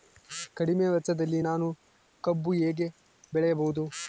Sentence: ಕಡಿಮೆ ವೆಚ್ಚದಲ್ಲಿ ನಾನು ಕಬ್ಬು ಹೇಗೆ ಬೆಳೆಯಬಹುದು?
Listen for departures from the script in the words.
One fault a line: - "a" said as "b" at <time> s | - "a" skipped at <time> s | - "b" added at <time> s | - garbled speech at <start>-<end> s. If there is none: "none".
none